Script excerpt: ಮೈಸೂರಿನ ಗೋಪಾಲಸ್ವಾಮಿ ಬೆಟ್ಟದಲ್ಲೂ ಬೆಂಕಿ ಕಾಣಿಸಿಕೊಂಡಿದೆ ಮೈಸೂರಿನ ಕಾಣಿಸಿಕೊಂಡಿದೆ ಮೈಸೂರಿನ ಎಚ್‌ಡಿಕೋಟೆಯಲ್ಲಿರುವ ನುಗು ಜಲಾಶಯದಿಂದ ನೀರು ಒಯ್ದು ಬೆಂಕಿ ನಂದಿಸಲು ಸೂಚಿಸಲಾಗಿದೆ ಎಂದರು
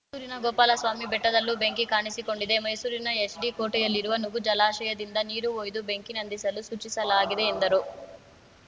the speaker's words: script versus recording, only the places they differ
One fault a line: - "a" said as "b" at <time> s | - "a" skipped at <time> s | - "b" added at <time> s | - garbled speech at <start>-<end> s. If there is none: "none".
- "ಕಾಣಿಸಿಕೊಂಡಿದೆ ಮೈಸೂರಿನ" skipped at 3.1 s